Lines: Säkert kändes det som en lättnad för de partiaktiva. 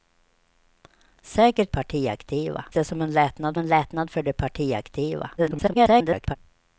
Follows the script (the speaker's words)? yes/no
no